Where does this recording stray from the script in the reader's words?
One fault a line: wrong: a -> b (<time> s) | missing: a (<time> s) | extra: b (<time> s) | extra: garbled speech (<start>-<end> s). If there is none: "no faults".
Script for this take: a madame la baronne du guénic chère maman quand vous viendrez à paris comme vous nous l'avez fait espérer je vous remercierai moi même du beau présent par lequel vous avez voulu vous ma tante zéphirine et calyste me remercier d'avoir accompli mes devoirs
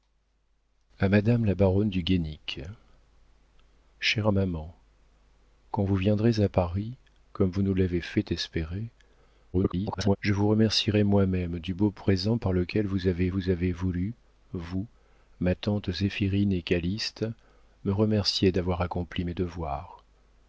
extra: garbled speech (9.5-10.2 s)
extra: vous avez (13.3 s)